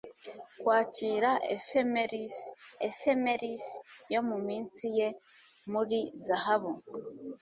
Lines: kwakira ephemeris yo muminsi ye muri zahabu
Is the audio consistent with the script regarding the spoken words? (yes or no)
no